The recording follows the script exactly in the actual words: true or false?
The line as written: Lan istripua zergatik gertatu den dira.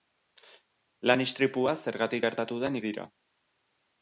true